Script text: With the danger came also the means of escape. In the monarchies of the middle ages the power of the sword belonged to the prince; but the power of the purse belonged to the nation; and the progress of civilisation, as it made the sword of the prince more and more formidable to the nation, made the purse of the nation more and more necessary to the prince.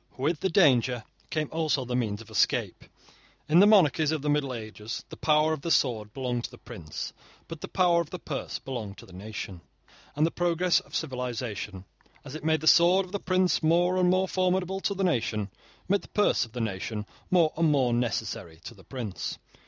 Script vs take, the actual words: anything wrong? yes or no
no